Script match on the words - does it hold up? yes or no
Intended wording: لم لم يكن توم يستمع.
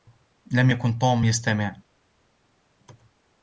no